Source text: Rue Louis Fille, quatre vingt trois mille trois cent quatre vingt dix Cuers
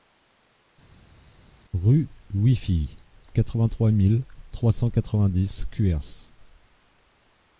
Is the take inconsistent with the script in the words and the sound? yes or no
no